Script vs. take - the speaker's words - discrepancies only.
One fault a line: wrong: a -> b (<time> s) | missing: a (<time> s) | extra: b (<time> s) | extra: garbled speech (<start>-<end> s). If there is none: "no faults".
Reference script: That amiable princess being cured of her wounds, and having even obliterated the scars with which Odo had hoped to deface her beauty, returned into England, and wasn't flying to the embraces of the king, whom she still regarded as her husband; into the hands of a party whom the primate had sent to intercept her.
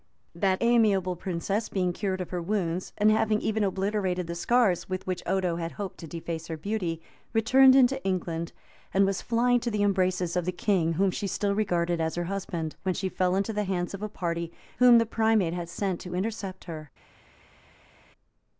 wrong: wasn't -> was (9.1 s)
extra: when she fell (12.8 s)